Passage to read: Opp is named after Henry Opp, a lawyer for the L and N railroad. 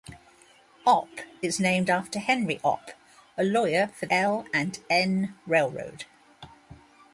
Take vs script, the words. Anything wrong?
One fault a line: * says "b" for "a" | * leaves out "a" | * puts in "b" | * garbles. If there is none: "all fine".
* leaves out "the"